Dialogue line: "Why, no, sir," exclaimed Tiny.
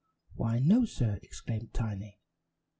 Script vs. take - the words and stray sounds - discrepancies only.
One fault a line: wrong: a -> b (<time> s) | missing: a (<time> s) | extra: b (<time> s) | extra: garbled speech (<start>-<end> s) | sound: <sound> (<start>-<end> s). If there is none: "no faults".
no faults